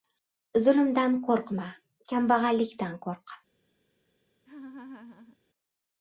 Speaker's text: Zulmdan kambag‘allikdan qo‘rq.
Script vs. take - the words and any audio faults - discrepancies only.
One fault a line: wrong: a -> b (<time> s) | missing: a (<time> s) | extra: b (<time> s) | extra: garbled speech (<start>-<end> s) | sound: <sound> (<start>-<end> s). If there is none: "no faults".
extra: qo‘rqma (1.3 s)
sound: laugh (4.5-5.4 s)